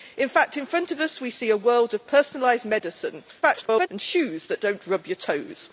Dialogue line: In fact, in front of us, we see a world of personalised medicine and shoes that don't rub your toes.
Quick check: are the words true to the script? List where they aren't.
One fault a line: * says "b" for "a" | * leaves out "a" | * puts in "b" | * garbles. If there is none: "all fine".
* garbles